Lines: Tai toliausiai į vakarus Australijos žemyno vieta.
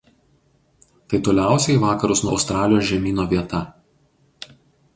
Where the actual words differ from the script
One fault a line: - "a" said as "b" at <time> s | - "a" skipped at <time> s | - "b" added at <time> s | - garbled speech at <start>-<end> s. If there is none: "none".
none